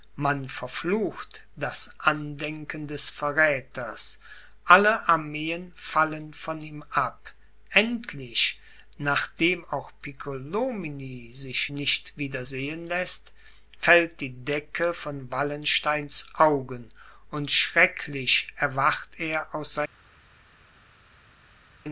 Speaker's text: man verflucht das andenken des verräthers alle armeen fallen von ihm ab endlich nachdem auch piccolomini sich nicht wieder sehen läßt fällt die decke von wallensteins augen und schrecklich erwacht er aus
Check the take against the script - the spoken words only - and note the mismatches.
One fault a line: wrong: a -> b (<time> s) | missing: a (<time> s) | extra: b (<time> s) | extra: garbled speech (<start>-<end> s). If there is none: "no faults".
no faults